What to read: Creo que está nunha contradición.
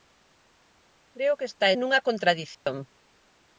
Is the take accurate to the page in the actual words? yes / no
yes